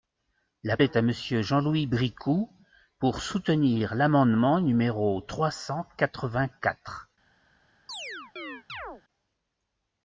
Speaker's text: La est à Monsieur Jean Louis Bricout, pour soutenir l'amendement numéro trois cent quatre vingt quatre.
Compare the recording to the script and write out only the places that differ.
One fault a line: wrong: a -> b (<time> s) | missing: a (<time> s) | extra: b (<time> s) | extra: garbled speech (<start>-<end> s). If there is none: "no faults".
no faults